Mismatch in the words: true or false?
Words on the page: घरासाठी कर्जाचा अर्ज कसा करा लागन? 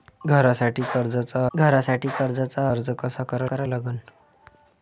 true